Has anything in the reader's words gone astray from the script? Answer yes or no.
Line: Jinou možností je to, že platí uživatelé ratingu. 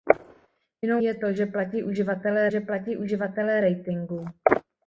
yes